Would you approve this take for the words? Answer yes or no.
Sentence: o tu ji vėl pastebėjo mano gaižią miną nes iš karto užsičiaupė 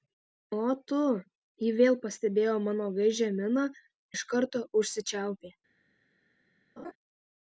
no